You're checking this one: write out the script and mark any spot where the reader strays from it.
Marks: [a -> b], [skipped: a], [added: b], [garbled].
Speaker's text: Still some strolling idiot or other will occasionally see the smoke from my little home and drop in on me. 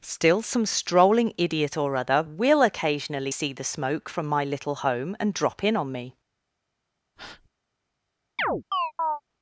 Still some strolling idiot or other will occasionally see the smoke from my little home and drop in on me.